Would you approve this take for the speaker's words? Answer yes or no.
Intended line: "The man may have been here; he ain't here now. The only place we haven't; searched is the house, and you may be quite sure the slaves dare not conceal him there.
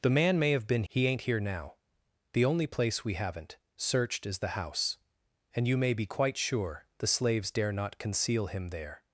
no